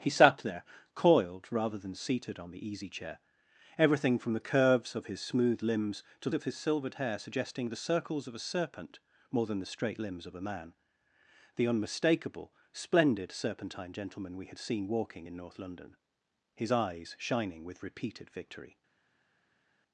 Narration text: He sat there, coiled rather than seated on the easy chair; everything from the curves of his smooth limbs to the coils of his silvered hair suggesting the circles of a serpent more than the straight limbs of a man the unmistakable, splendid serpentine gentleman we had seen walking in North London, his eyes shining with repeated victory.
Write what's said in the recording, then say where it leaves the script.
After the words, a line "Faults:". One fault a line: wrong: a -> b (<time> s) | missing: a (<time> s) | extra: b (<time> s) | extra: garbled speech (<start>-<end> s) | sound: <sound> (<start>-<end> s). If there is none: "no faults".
He sat there, coiled rather than seated on the easy chair; everything from the curves of his smooth limbs to of his silvered hair suggesting the circles of a serpent more than the straight limbs of a man the unmistakable, splendid serpentine gentleman we had seen walking in North London, his eyes shining with repeated victory.
Faults:
missing: the coils (6.3 s)